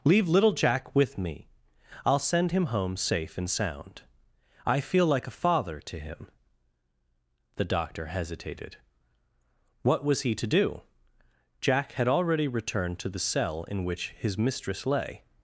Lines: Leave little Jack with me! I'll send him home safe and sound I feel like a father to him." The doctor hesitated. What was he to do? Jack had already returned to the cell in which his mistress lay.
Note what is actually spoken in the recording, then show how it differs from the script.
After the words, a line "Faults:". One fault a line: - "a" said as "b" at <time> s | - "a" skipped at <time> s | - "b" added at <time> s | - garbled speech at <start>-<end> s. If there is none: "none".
Leave little Jack with me! I'll send him home safe and sound I feel like a father to him." The doctor hesitated. What was he to do? Jack had already returned to the cell in which his mistress lay.
Faults:
none